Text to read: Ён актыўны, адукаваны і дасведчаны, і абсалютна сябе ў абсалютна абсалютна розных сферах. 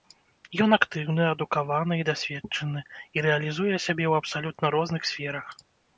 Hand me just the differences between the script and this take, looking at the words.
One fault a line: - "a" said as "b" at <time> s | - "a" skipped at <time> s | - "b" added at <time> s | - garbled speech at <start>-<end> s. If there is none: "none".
- "абсалютна" said as "рэалізуе" at 3.3 s
- "абсалютна" skipped at 4.7 s